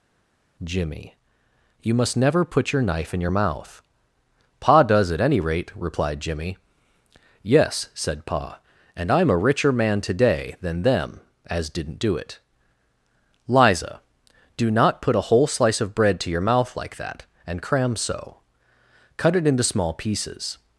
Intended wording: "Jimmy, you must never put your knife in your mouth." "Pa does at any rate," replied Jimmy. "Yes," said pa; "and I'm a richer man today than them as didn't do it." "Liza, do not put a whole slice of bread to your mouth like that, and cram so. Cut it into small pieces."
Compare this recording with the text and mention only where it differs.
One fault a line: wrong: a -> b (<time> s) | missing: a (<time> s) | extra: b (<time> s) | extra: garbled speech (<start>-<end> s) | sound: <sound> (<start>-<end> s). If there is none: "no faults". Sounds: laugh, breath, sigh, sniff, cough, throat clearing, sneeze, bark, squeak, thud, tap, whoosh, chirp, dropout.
no faults